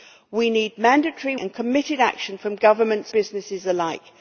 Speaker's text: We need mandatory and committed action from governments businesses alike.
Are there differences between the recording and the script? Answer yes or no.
no